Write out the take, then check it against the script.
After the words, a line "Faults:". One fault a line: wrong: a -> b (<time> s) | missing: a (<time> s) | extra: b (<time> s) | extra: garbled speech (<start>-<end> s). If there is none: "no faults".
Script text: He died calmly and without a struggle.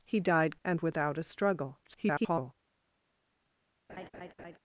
He died and without a struggle. [garbled]
Faults:
missing: calmly (0.6 s)
extra: garbled speech (1.9-2.5 s)